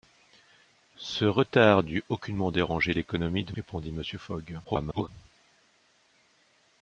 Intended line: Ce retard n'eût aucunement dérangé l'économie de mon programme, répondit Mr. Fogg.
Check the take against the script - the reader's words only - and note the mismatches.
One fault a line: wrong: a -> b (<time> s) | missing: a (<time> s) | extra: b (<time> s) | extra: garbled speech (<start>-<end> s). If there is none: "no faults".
missing: mon programme (3.5 s)
extra: garbled speech (4.6-5.1 s)